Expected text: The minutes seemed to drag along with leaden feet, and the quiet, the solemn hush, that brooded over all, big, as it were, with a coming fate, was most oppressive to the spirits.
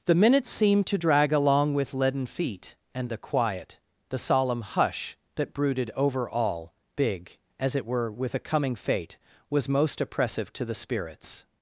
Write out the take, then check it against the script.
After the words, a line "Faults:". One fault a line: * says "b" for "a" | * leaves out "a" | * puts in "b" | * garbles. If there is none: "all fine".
The minutes seemed to drag along with leaden feet, and the quiet, the solemn hush, that brooded over all, big, as it were, with a coming fate, was most oppressive to the spirits.
Faults:
all fine